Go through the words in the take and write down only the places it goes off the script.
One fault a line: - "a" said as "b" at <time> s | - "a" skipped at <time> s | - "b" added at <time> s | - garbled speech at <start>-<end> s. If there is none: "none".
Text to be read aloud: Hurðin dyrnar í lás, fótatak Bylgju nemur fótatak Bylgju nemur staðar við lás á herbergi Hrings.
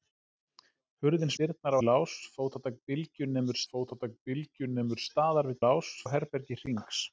none